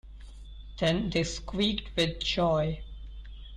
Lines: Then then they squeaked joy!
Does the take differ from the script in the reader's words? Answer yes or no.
yes